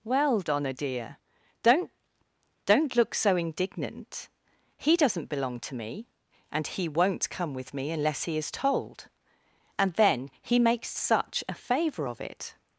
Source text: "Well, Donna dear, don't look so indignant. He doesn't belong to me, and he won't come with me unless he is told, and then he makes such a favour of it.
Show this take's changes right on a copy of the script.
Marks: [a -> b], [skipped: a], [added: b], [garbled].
"Well, Donna dear, don't [added: don't] look so indignant. He doesn't belong to me, and he won't come with me unless he is told, and then he makes such a favour of it.